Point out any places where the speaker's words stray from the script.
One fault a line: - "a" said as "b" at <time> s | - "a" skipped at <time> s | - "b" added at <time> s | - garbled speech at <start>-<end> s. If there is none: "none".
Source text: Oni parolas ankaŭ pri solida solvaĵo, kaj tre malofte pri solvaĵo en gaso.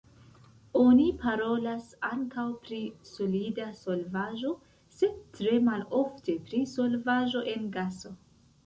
- "kaj" said as "sed" at 5.0 s